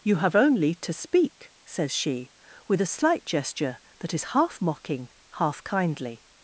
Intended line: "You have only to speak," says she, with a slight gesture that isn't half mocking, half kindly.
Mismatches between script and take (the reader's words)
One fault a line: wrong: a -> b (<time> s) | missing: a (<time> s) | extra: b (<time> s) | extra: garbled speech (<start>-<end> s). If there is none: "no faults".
wrong: isn't -> is (4.1 s)